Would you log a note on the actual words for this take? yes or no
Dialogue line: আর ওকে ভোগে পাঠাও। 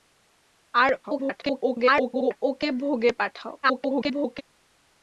yes